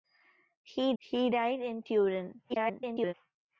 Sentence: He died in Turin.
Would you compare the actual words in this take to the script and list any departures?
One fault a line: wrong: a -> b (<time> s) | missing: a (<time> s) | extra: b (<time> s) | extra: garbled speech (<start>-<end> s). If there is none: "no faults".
extra: he (1.0 s)
extra: garbled speech (2.5-3.1 s)